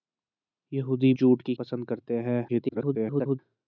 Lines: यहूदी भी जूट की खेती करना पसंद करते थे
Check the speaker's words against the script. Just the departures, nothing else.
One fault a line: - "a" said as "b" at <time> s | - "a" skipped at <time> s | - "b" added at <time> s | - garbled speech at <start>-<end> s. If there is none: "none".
- "भी" skipped at 1.1 s
- "खेती करना" skipped at 1.5 s
- garbled speech at 2.5-3.4 s